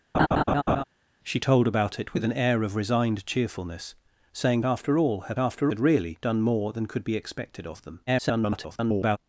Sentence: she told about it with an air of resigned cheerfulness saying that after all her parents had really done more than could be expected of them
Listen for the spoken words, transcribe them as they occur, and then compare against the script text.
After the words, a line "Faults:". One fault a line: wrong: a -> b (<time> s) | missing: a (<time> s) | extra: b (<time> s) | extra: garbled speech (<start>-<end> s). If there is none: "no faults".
she told about it with an air of resigned cheerfulness saying after all her after had really done more than could be expected of them [garbled]
Faults:
missing: that (4.6 s)
wrong: parents -> after (5.4 s)
extra: garbled speech (8.1-9.2 s)